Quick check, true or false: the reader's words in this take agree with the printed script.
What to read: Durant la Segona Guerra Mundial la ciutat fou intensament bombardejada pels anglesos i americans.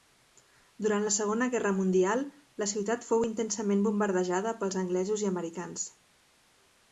true